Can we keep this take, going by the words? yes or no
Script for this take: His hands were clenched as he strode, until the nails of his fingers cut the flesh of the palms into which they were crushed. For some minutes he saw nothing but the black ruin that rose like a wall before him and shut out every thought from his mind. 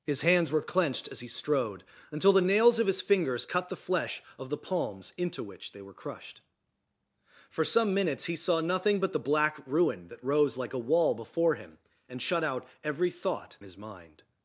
no